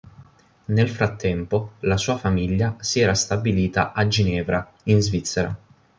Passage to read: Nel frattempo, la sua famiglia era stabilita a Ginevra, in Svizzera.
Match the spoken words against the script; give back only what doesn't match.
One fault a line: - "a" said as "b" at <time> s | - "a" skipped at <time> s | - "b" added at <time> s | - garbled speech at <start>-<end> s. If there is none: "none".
- "si" added at 2.8 s